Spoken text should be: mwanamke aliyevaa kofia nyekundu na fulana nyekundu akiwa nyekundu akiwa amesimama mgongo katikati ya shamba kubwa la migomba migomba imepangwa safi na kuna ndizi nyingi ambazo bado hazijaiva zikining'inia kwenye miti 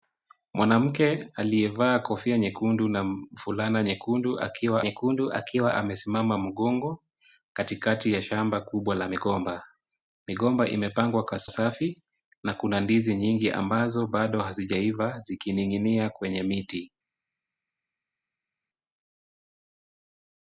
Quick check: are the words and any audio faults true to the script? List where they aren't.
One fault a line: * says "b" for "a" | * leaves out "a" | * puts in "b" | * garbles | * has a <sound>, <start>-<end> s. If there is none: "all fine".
all fine